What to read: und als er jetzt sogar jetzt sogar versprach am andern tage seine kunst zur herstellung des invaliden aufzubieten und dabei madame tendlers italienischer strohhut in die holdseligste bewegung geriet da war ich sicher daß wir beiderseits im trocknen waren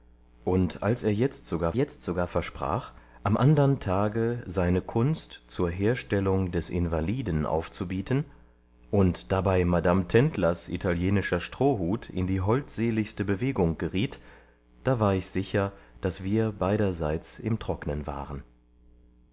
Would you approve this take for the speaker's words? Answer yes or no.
yes